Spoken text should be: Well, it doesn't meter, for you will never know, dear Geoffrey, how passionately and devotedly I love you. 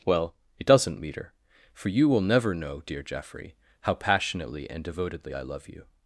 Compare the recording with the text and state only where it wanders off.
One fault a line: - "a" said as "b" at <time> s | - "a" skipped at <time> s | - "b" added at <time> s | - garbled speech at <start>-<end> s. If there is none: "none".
none